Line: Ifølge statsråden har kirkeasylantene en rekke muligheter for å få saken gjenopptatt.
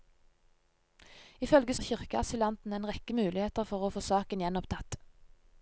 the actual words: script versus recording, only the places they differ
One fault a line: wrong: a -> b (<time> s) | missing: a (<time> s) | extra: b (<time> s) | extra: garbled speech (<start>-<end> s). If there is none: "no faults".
missing: statsråden (1.8 s)